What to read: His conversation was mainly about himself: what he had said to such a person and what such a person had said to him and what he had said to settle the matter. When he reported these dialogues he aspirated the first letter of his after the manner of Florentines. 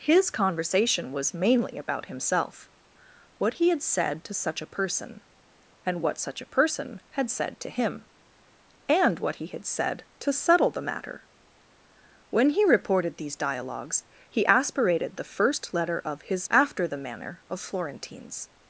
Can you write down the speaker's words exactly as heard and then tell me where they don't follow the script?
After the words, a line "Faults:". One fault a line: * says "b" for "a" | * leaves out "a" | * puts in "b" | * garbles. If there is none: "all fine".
His conversation was mainly about himself: what he had said to such a person and what such a person had said to him and what he had said to settle the matter. When he reported these dialogues he aspirated the first letter of his after the manner of Florentines.
Faults:
all fine